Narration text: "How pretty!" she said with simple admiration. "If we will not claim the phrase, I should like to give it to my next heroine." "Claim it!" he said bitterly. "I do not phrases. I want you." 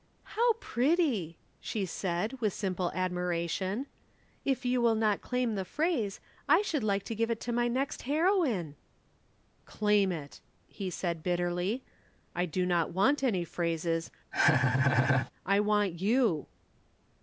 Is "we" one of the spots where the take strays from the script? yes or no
yes